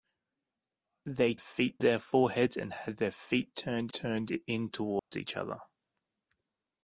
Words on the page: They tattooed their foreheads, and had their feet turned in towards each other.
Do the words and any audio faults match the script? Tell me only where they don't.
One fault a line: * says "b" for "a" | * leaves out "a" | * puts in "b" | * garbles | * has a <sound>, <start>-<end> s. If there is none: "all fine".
* says "feet" for "tattooed"
* puts in "turned"
* has a dropout, 5.0-5.1 s